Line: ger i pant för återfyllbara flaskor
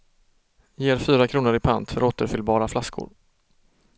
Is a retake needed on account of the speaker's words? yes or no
yes